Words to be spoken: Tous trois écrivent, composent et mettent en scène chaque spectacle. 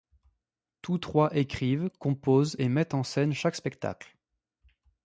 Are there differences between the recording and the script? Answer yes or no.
no